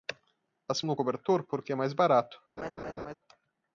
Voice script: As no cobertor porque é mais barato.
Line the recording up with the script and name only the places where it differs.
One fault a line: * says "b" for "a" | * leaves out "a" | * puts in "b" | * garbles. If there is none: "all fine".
all fine